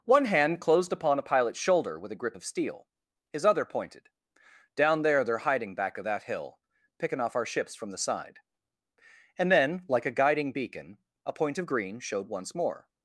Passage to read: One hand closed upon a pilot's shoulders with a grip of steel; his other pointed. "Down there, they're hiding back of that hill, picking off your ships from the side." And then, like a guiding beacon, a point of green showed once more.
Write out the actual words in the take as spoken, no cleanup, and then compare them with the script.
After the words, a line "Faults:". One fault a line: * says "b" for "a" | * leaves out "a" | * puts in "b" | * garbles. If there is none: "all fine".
One hand closed upon a pilot's shoulder with a grip of steel; his other pointed. "Down there, they're hiding back of that hill, picking off our ships from the side." And then, like a guiding beacon, a point of green showed once more.
Faults:
* says "shoulder" for "shoulders"
* says "our" for "your"